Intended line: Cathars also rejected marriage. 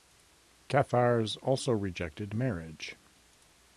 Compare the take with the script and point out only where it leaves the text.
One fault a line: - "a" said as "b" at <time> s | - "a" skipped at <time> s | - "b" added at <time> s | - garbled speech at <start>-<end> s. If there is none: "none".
none